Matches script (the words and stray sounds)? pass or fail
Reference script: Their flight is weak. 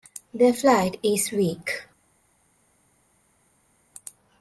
pass